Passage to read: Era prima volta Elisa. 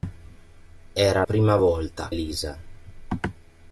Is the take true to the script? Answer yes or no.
yes